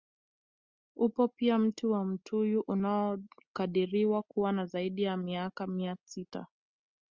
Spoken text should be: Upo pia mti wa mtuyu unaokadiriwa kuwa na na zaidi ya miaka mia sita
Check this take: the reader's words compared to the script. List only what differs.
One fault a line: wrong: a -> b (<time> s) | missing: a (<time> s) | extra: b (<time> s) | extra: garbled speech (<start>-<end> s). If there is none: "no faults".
missing: na (4.7 s)